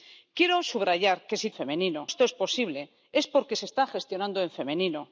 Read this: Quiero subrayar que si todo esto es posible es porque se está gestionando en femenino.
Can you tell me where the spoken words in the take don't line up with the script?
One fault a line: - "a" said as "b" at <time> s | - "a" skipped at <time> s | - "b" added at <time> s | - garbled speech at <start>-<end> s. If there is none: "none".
- "todo" said as "femenino" at 1.5 s